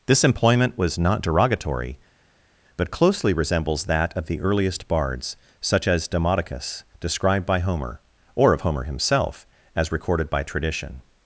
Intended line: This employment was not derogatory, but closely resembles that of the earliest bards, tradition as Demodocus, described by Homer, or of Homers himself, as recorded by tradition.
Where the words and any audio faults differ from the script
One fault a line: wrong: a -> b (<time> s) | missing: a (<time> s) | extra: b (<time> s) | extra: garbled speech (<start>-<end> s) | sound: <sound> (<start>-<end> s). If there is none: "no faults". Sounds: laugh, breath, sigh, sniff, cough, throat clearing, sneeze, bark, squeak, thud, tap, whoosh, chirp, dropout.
wrong: tradition -> such (5.6 s)
wrong: Homers -> Homer (8.6 s)